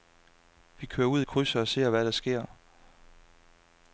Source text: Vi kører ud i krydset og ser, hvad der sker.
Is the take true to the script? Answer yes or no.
yes